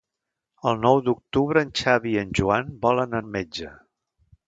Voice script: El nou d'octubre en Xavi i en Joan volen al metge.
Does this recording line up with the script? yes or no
yes